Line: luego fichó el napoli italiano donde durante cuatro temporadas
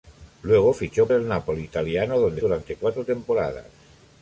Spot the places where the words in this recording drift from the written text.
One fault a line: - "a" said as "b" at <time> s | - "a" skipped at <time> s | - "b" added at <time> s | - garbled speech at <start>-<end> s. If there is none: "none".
none